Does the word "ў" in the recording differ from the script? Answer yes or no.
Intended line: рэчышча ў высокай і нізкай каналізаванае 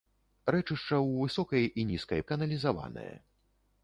no